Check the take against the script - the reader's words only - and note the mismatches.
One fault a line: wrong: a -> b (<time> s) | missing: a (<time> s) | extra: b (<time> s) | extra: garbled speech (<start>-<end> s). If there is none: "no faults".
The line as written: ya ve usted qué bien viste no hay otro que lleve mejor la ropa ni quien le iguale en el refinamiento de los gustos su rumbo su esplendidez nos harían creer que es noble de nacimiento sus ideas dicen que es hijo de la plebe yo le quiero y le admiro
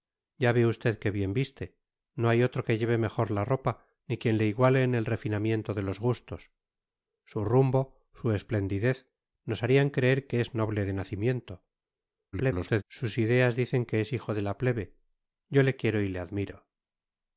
extra: garbled speech (12.3-12.8 s)